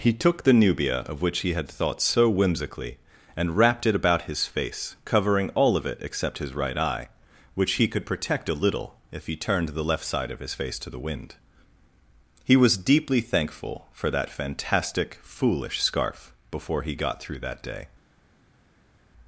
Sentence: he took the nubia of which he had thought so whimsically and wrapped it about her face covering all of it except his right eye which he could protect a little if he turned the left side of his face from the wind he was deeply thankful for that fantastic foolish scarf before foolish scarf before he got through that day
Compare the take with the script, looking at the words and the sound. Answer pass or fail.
fail